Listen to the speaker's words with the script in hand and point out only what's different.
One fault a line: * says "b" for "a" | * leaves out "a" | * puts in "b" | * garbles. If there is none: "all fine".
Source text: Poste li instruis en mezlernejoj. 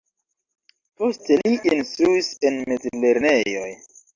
all fine